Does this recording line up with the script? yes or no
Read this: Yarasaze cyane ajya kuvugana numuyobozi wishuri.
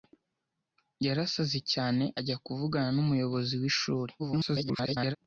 no